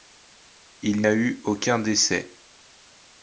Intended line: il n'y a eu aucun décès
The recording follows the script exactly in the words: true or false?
false